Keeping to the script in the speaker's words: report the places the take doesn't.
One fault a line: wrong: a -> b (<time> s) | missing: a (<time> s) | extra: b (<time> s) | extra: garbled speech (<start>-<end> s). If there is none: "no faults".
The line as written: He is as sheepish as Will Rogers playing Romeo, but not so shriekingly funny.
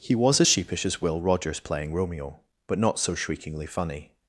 wrong: is -> was (0.1 s)